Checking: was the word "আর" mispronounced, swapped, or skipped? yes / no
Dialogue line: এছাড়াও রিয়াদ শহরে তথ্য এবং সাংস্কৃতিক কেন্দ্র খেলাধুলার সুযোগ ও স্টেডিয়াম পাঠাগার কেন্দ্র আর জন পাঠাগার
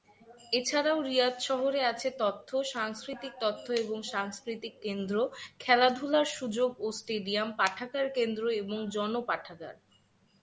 yes